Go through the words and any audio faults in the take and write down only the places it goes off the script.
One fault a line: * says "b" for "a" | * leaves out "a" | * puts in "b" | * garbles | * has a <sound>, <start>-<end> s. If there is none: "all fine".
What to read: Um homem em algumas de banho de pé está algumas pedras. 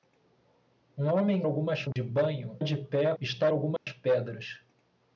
* has a dropout, 1.9-2.0 s
* has a dropout, 3.8-3.9 s